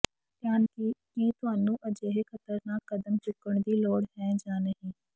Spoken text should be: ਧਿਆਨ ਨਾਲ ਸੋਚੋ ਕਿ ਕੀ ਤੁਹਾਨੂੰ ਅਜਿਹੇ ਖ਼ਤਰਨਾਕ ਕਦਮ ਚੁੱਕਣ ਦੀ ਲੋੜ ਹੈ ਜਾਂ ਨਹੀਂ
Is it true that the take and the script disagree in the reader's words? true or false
true